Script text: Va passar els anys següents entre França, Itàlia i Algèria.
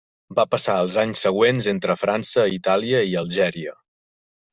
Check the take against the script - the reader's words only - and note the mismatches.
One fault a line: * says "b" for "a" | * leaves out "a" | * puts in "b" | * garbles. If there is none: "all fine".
all fine